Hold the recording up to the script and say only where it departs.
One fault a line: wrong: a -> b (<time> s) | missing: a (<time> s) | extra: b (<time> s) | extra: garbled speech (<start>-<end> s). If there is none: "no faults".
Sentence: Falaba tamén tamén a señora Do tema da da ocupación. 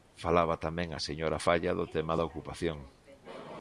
missing: tamén (0.9 s)
extra: Faia (1.4 s)
missing: da (2.3 s)